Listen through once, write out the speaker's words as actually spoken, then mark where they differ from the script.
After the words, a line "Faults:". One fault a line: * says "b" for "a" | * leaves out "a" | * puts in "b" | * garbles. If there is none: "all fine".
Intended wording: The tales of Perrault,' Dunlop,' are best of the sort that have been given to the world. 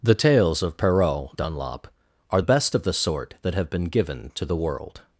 The tales of Perrault,' Dunlop,' are best of the sort that have been given to the world.
Faults:
all fine